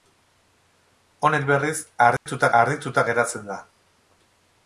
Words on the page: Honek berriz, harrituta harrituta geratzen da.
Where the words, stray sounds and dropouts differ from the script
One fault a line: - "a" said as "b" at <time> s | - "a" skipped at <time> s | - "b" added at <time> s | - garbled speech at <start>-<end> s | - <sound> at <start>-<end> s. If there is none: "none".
- dropout at 2.2-2.3 s